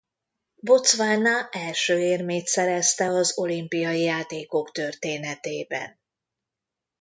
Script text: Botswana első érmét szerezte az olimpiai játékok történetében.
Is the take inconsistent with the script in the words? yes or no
no